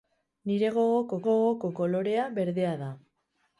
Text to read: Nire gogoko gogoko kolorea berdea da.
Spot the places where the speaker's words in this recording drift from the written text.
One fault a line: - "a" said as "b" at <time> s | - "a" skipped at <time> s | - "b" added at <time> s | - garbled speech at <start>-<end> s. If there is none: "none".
none